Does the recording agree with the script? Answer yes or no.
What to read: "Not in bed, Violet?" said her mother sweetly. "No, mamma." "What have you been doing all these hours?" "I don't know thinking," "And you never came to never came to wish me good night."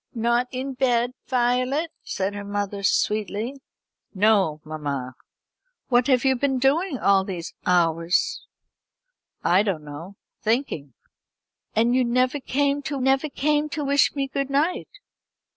yes